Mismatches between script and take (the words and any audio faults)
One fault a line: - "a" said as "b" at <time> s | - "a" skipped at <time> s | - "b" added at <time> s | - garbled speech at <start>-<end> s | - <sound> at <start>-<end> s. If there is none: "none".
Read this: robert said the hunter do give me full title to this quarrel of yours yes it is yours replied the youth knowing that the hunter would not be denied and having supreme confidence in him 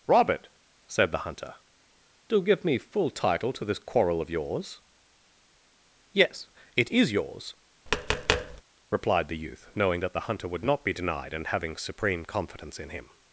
- tap at 7.9-8.6 s